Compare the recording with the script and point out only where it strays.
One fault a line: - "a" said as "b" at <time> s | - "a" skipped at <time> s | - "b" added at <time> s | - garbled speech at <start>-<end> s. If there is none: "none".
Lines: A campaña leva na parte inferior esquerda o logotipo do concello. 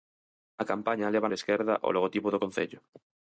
- "na parte inferior" skipped at 1.3 s